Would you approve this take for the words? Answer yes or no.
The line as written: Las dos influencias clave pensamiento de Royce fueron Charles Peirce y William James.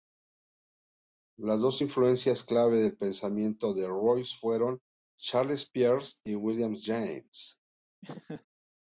no